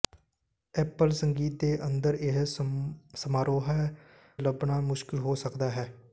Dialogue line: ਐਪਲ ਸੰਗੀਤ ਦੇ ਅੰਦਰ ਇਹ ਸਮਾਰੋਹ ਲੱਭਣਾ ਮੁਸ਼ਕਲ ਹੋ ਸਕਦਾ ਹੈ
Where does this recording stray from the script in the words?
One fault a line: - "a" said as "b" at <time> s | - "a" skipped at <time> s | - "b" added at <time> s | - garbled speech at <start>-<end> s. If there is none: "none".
none